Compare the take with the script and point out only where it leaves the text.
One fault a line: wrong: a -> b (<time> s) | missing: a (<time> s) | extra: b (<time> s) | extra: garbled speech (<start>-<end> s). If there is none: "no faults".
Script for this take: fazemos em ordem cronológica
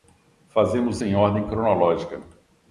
no faults